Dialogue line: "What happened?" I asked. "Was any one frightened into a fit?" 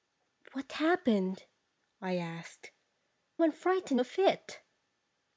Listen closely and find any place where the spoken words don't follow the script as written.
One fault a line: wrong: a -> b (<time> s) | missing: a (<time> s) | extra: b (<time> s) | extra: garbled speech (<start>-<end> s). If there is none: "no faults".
missing: Was any (2.7 s)
missing: into (4.0 s)